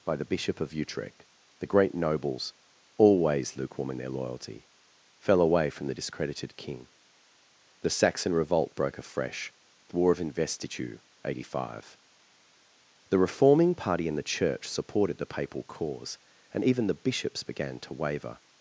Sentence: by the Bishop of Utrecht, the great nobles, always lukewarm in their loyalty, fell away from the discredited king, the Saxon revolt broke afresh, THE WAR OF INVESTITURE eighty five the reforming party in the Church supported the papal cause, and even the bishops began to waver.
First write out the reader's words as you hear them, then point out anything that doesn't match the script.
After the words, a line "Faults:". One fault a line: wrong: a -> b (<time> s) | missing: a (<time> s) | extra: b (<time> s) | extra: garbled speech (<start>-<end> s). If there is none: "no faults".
by the Bishop of Utrecht, the great nobles, always lukewarm in their loyalty, fell away from the discredited king, the Saxon revolt broke afresh, THE WAR OF INVESTITURE eighty five the reforming party in the Church supported the papal cause, and even the bishops began to waver.
Faults:
no faults